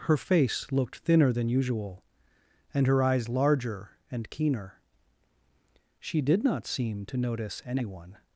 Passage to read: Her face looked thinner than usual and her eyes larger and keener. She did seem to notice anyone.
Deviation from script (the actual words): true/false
true